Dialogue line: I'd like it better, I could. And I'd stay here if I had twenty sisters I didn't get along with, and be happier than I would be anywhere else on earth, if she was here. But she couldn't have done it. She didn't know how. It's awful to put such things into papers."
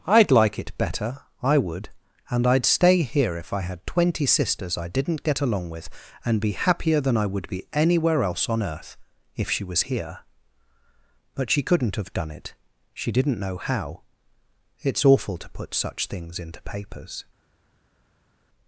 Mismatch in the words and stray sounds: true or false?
true